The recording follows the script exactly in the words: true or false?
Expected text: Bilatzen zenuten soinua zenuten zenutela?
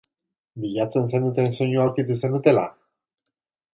false